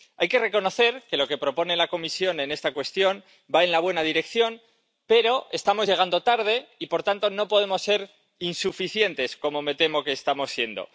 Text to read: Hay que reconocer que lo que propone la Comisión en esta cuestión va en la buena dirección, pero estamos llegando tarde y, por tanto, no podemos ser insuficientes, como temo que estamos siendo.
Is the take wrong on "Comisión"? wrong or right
right